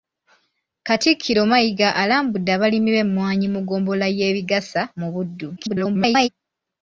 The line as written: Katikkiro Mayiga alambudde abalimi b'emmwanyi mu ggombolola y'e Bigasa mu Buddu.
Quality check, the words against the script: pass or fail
fail